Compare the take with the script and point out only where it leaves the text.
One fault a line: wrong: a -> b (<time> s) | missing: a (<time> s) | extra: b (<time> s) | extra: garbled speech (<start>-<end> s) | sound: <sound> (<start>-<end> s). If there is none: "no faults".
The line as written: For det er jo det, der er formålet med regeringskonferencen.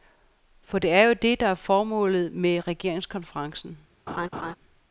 sound: laugh (4.1-4.5 s)